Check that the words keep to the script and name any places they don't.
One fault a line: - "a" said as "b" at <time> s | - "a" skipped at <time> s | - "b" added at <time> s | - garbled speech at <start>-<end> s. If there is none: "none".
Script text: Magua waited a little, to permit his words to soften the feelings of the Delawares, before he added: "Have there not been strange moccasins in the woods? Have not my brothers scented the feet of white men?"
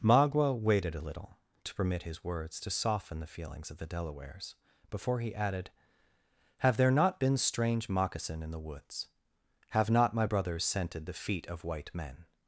- "moccasins" said as "moccasin" at 7.9 s